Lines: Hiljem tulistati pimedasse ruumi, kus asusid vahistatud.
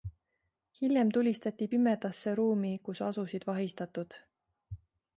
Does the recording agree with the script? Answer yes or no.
yes